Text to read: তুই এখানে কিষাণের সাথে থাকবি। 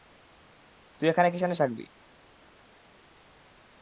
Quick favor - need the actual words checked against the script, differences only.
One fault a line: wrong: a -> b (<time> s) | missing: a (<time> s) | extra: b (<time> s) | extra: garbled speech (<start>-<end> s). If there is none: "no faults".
missing: সাথে (1.6 s)